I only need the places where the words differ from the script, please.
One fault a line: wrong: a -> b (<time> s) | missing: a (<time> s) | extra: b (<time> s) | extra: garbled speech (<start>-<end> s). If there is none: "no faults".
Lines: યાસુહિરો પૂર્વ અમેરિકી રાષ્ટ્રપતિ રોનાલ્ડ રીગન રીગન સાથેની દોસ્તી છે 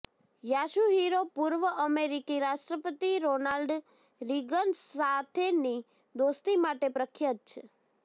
missing: રીગન (4.8 s)
extra: માટે પ્રખ્યાત (6.6 s)